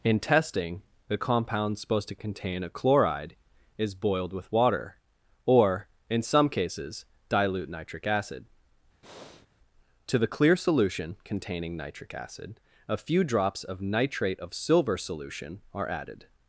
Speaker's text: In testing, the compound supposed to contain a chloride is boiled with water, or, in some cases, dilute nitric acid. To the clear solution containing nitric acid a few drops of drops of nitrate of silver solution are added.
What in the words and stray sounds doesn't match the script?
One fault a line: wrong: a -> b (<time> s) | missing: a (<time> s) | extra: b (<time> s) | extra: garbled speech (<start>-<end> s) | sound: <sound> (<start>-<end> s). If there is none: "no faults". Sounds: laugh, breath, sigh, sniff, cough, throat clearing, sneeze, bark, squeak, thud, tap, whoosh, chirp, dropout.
sound: breath (9.0-9.5 s)
missing: drops of (13.8 s)